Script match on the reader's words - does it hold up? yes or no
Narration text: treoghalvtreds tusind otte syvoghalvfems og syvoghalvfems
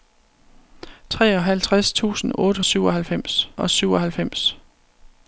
yes